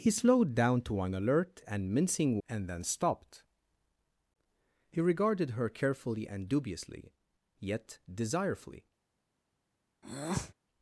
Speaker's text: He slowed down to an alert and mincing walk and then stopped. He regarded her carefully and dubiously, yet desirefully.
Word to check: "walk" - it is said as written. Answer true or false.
false